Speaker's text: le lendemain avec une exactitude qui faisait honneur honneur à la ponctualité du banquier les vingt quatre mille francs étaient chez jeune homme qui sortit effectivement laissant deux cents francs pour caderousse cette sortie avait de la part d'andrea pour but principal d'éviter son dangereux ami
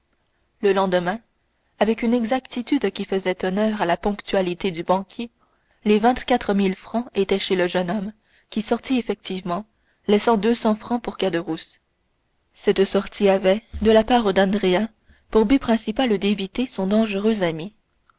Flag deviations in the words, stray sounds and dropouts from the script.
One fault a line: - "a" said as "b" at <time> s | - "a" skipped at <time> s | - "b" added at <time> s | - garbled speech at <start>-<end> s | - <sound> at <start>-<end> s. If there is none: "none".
- "honneur" skipped at 3.8 s
- "le" added at 7.5 s